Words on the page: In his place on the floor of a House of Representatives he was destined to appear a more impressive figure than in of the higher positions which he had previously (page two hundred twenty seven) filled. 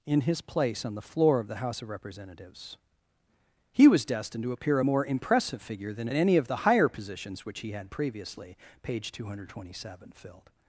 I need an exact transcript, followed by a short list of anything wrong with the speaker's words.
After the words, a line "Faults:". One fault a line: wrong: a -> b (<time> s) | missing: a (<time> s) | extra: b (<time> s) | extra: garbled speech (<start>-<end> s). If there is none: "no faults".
In his place on the floor of the House of Representatives he was destined to appear a more impressive figure than in any of the higher positions which he had previously (page two hundred twenty seven) filled.
Faults:
wrong: a -> the (1.5 s)
extra: any (6.2 s)